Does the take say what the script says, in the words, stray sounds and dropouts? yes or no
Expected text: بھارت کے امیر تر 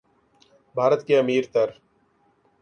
yes